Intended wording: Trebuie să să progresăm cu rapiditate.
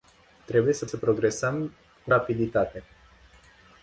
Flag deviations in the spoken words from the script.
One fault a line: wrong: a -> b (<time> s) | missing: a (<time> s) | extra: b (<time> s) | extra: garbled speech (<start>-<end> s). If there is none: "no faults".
no faults